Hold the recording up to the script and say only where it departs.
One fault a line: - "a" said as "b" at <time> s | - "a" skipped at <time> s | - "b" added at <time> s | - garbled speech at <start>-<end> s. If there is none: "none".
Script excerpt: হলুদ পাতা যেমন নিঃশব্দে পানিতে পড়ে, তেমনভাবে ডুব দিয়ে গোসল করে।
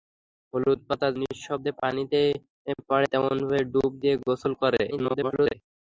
- "যেমন" skipped at 1.1 s
- garbled speech at 4.9-5.5 s